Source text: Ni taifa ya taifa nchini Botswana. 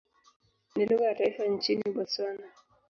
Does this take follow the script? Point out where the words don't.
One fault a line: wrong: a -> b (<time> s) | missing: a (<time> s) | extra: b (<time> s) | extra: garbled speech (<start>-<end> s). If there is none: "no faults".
wrong: taifa -> lugha (0.8 s)